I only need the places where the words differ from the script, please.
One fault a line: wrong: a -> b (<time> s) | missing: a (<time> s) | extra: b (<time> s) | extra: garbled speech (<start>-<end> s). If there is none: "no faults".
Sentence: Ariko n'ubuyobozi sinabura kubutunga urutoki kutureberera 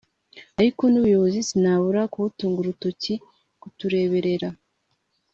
no faults